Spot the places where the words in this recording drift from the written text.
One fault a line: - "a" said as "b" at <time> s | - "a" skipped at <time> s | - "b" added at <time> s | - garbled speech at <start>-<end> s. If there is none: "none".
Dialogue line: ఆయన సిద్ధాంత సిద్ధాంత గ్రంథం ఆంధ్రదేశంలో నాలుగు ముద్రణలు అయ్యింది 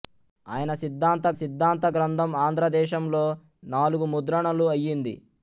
none